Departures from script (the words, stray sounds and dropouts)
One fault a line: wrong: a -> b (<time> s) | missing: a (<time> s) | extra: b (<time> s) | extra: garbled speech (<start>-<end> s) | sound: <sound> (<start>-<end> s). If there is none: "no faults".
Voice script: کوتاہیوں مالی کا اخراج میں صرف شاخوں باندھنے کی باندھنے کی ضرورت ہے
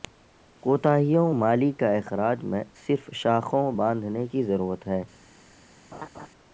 missing: باندھنے کی (4.4 s)
sound: laugh (5.9-6.3 s)